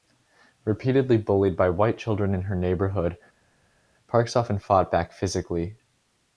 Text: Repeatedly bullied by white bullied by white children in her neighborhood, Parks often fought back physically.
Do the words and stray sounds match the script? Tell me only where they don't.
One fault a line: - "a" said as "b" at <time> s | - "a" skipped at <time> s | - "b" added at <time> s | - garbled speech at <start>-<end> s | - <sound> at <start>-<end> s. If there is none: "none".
- "bullied by white" skipped at 2.0 s